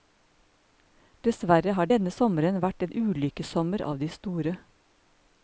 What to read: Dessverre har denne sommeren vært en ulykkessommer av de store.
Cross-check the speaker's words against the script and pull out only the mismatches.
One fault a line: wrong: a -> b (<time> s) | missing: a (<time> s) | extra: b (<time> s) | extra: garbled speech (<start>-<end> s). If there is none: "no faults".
no faults